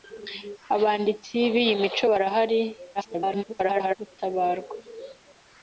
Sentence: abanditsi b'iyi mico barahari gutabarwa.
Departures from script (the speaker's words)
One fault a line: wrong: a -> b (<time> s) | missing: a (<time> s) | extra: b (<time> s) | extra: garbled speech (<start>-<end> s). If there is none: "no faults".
extra: garbled speech (2.9-4.0 s)